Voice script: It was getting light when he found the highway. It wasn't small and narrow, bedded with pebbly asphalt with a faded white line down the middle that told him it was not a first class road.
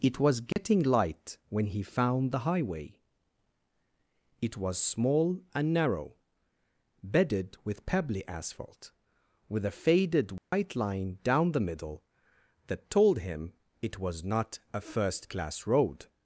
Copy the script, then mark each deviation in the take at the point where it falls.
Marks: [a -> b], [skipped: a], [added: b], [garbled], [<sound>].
It was getting [dropout] light when he found the highway. It [wasn't -> was] small and narrow, bedded with pebbly asphalt with a faded white [dropout] line down the middle that told him it was not a first class road.